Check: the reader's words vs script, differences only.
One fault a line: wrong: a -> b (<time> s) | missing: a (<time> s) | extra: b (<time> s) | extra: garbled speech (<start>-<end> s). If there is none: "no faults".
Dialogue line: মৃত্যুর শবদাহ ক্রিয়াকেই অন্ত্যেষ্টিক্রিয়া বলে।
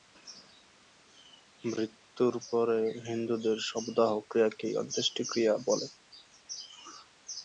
extra: পরে হিন্দুদের (2.5 s)